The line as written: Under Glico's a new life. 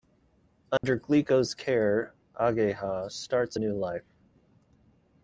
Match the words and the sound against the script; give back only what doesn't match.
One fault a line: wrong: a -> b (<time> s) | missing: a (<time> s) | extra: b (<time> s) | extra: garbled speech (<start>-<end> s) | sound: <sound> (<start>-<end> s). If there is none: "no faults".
sound: dropout (0.8-0.8 s)
extra: care Ageha starts (1.5 s)